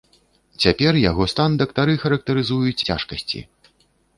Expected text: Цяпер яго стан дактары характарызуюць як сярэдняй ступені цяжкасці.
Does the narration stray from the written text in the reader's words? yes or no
yes